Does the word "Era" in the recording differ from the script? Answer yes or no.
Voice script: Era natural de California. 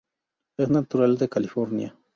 yes